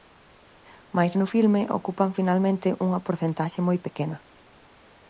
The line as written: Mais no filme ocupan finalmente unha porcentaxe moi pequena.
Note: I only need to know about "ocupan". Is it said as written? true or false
true